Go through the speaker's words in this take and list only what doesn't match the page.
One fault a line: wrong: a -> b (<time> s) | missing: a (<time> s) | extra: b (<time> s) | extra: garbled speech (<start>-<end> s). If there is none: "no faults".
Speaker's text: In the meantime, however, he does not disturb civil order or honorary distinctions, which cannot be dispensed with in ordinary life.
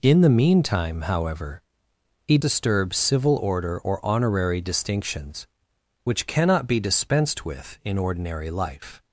missing: does not (2.4 s)